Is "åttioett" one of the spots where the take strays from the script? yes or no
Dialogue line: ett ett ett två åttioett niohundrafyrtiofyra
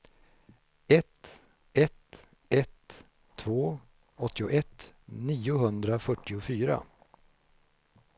no